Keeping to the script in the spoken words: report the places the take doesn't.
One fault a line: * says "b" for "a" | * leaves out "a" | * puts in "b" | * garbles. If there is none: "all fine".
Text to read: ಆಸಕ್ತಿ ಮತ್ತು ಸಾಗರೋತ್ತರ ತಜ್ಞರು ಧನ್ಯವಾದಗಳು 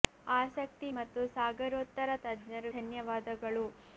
all fine